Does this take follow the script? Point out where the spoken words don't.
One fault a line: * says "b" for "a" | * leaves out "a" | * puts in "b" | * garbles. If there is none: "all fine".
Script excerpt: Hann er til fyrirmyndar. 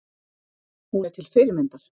* says "Hún" for "Hann"